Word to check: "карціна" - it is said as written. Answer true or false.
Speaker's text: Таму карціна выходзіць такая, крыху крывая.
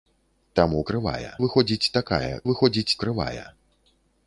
false